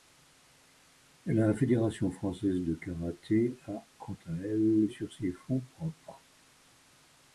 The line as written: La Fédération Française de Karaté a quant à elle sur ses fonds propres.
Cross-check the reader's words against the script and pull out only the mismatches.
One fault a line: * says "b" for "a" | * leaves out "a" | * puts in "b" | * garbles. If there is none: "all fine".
all fine